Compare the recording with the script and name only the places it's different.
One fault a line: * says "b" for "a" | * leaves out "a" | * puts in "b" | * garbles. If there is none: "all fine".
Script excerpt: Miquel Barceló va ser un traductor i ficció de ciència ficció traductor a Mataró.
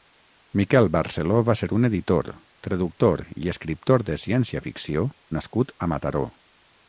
* puts in "editor"
* says "escriptor" for "ficció"
* says "nascut" for "traductor"